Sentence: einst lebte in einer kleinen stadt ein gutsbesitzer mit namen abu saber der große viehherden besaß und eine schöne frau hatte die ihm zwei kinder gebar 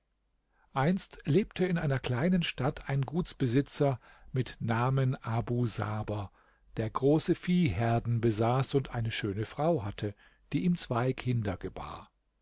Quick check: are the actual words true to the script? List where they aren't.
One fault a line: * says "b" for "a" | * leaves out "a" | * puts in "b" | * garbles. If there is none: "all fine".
all fine